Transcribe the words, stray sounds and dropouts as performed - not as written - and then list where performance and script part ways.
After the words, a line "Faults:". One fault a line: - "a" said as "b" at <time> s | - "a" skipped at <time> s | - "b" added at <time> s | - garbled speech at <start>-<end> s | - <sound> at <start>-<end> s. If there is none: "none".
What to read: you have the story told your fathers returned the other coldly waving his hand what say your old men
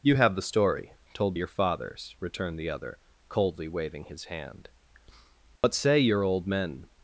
you have the story told your fathers returned the other coldly waving his hand what say your old men
Faults:
- dropout at 5.6-5.6 s